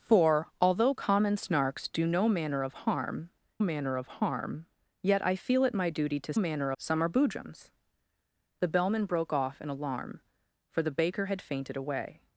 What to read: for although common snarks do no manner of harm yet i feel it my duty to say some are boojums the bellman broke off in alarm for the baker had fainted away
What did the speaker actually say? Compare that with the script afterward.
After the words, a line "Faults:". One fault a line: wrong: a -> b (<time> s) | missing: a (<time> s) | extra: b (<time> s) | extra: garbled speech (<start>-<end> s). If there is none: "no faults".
for although common snarks do no manner of harm manner of harm yet i feel it my duty to manner some are boojums the bellman broke off in alarm for the baker had fainted away
Faults:
extra: manner of harm (3.6 s)
wrong: say -> manner (6.4 s)